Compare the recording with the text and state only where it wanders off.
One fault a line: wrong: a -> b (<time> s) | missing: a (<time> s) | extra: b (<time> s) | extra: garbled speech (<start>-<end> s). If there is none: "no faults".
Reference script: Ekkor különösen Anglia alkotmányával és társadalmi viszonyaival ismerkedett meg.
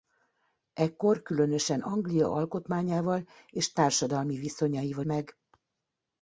missing: ismerkedett (5.0 s)